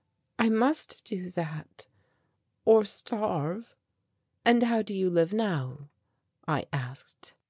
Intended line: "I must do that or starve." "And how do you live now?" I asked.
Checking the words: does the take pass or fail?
pass